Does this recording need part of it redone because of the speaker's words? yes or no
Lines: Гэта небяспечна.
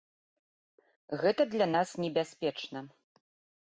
yes